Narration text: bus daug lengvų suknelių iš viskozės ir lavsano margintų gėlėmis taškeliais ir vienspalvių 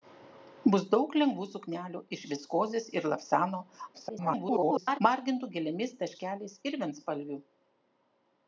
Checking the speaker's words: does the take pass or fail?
fail